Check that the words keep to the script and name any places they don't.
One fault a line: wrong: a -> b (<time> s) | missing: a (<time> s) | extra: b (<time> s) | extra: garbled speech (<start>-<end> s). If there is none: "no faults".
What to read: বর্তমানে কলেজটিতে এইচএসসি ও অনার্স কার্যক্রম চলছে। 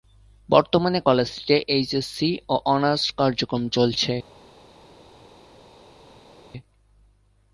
no faults